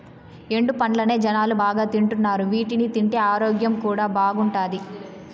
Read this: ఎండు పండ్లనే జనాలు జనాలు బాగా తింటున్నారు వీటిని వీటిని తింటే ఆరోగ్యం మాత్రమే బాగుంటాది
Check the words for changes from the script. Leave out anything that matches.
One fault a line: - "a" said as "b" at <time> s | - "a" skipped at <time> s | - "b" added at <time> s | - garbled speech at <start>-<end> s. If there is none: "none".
- "జనాలు" skipped at 1.6 s
- "వీటిని" skipped at 2.9 s
- "మాత్రమే" said as "కూడా" at 3.8 s